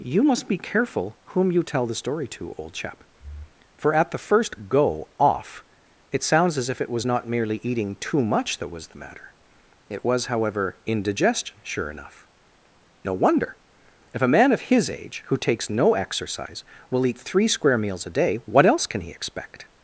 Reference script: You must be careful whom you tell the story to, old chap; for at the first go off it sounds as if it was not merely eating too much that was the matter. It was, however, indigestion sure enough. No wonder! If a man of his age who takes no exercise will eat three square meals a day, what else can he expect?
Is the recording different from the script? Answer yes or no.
no